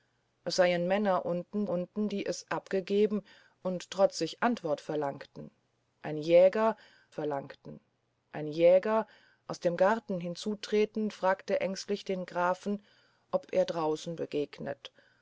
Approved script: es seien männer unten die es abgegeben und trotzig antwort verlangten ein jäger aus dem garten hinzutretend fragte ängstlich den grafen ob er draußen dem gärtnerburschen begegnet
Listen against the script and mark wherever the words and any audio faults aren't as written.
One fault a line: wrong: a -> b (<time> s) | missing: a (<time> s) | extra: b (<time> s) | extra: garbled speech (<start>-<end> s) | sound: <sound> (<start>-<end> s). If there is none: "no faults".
extra: unten (1.7 s)
extra: verlangten ein jäger (7.1 s)
missing: dem gärtnerburschen (14.2 s)